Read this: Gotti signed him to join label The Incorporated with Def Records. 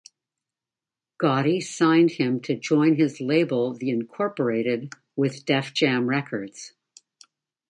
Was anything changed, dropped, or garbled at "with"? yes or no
no